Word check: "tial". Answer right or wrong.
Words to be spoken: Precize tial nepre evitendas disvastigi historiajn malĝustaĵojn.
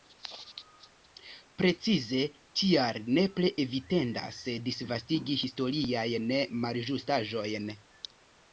right